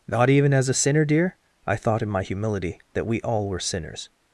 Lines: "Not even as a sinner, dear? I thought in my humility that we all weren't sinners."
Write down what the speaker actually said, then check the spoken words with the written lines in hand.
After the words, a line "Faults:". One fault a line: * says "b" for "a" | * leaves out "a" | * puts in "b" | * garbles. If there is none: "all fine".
"Not even as a sinner, dear? I thought in my humility that we all were sinners."
Faults:
* says "were" for "weren't"